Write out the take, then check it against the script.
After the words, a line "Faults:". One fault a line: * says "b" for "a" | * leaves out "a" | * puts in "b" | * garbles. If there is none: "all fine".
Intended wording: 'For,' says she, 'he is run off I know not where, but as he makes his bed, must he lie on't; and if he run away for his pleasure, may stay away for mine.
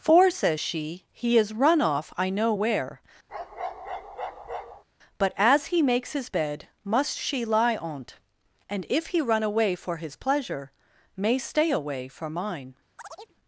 'For,' says she, 'he is run off I know where, but as he makes his bed, must she lie on't; and if he run away for his pleasure, may stay away for mine.
Faults:
* leaves out "not"
* says "she" for "he"